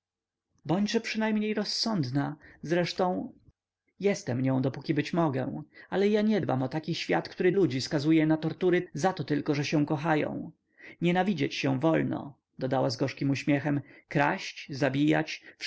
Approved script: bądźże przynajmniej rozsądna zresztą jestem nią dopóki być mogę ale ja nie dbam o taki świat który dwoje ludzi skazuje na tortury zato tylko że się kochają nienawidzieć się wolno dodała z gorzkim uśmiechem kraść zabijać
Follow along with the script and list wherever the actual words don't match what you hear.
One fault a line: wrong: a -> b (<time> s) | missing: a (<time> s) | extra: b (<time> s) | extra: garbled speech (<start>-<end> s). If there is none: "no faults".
missing: dwoje (7.5 s)